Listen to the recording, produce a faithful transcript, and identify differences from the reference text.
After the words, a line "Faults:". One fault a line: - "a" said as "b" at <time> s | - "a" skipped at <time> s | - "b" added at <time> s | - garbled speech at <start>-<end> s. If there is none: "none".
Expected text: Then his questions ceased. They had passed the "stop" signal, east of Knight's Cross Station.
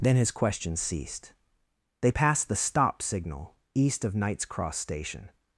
Then his questions ceased. They passed the "stop" signal, east of Knight's Cross Station.
Faults:
- "had" skipped at 2.1 s